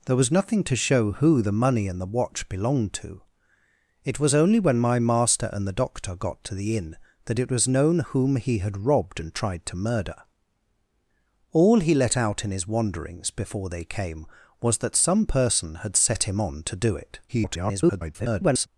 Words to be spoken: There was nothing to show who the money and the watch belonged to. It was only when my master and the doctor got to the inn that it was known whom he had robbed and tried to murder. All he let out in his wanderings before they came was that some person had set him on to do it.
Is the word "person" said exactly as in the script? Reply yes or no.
yes